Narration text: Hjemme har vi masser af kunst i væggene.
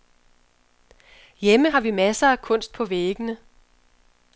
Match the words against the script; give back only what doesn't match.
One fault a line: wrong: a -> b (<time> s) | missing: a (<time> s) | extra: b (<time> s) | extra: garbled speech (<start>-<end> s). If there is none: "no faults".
wrong: i -> på (2.7 s)